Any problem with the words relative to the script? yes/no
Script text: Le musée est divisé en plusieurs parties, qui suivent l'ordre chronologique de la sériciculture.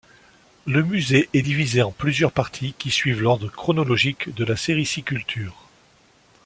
no